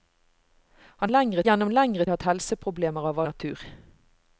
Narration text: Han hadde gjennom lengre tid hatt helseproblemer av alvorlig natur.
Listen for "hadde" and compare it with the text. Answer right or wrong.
wrong